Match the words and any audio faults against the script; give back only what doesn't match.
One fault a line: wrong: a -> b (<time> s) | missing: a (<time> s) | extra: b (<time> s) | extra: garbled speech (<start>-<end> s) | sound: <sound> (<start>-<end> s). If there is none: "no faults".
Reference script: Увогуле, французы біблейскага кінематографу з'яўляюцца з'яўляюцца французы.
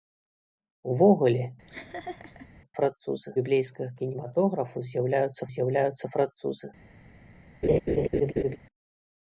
sound: laugh (1.7-2.5 s)
sound: laugh (7.6-8.6 s)